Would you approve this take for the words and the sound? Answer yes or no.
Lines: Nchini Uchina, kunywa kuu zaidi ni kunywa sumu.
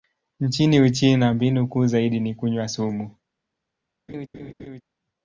no